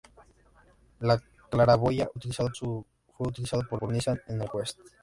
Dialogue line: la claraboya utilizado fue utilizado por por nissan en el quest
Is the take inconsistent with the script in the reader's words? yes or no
no